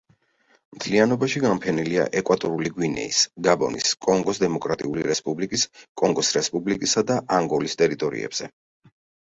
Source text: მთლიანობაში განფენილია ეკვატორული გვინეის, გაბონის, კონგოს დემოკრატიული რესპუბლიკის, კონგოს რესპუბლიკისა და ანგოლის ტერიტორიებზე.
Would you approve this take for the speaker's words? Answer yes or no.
yes